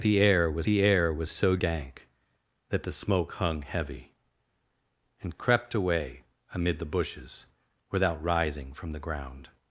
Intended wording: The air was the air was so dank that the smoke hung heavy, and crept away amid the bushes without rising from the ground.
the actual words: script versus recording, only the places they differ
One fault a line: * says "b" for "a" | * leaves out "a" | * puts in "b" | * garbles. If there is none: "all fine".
all fine